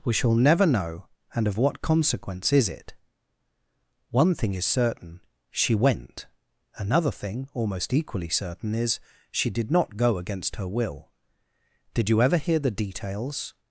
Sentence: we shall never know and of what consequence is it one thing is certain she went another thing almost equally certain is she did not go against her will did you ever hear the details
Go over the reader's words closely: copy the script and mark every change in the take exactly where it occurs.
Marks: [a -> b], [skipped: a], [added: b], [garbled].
we shall never know and of what consequence is it one thing is certain she went another thing almost equally certain is she did not go against her will did you ever hear the details